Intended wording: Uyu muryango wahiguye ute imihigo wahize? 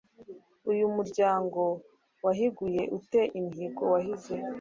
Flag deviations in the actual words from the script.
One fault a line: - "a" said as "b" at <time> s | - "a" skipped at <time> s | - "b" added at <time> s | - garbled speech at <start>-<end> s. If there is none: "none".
none